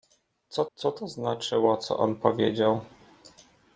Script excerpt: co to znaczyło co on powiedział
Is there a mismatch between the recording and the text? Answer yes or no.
yes